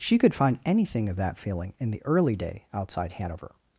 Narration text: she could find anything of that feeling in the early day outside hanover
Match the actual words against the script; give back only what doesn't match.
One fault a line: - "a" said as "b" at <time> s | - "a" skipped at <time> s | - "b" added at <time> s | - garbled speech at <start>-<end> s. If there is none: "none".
none